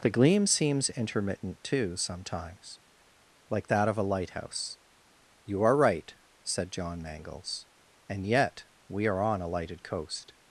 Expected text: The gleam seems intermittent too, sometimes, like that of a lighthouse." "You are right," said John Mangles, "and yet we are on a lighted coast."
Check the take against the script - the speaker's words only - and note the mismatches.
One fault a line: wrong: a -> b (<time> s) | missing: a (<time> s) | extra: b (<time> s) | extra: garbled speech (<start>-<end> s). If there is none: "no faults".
no faults